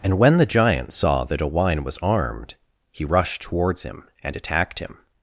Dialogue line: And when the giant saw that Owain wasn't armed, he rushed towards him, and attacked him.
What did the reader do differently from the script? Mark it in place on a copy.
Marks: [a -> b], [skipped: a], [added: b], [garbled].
And when the giant saw that Owain [wasn't -> was] armed, he rushed towards him, and attacked him.